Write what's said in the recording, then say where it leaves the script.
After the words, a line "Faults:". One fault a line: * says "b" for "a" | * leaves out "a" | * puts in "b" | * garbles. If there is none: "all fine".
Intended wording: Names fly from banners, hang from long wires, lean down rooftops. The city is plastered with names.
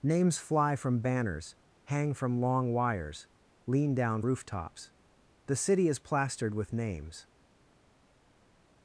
Names fly from banners, hang from long wires, lean down rooftops. The city is plastered with names.
Faults:
all fine